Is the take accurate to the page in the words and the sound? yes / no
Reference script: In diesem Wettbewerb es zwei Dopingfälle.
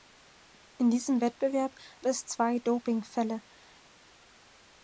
yes